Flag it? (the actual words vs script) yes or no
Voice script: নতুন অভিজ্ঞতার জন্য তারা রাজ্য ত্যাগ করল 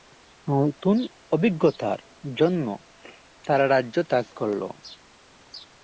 no